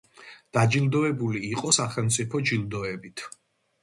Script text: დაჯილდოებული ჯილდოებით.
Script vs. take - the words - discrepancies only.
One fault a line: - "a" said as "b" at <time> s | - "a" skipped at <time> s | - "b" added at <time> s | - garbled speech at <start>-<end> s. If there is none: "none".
- "იყო სახელმწიფო" added at 1.5 s